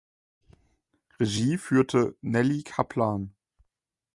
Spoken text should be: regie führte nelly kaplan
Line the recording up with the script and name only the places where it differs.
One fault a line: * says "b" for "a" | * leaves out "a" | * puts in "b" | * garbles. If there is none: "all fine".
all fine